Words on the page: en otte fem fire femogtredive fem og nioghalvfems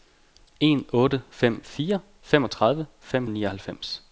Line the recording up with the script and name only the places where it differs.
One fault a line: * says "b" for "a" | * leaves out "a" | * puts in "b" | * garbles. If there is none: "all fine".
all fine